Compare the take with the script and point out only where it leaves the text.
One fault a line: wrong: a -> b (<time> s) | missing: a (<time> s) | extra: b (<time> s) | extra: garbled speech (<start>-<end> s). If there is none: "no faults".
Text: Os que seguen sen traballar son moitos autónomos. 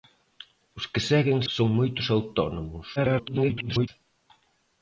missing: sen traballar (1.4 s)
extra: garbled speech (3.0-3.9 s)